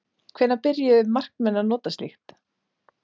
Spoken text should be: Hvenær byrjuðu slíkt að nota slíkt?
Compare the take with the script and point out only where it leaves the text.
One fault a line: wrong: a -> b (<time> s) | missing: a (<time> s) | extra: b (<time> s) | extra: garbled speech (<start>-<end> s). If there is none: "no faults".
wrong: slíkt -> markmenn (1.2 s)